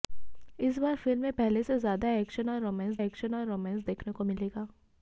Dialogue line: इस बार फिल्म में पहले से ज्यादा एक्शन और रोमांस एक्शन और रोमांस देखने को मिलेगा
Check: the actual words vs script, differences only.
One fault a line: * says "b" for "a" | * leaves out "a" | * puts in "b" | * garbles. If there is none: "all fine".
all fine